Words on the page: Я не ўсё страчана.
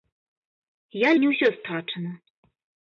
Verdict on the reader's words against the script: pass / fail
pass